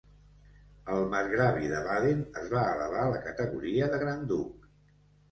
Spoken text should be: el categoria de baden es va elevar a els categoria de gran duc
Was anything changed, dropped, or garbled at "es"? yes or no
no